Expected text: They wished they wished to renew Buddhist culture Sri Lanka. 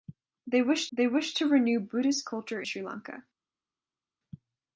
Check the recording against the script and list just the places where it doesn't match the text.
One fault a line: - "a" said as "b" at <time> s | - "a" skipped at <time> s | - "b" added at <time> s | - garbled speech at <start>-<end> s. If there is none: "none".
none